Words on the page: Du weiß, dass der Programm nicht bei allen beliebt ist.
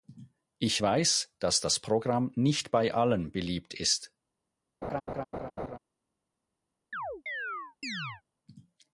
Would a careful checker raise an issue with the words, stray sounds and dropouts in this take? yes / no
yes